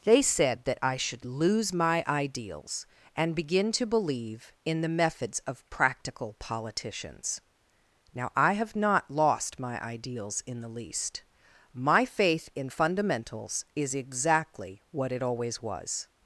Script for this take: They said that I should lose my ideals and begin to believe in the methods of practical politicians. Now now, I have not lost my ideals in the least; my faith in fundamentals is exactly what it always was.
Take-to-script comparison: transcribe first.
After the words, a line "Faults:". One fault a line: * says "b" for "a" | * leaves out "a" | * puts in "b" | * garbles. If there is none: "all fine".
They said that I should lose my ideals and begin to believe in the methods of practical politicians. Now, I have not lost my ideals in the least; my faith in fundamentals is exactly what it always was.
Faults:
* leaves out "now"